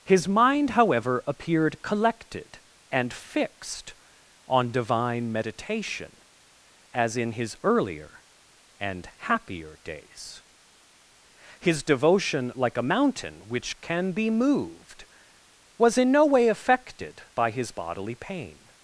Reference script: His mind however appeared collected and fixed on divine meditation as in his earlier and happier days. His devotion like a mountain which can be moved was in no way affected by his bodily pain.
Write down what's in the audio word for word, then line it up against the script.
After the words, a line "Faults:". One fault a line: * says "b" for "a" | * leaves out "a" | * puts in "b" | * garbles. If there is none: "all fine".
His mind however appeared collected and fixed on divine meditation as in his earlier and happier days. His devotion like a mountain which can be moved was in no way affected by his bodily pain.
Faults:
all fine